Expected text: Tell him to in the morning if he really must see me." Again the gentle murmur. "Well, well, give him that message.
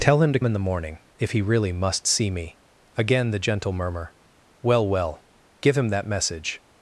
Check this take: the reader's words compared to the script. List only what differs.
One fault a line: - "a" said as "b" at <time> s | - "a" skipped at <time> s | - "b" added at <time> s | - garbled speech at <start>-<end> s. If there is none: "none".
none